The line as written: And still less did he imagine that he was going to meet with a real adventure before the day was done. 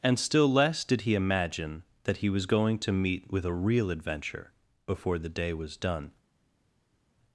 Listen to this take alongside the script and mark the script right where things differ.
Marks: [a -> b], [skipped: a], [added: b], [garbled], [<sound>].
And still less did he imagine that he was going to meet with a real adventure before the day was done.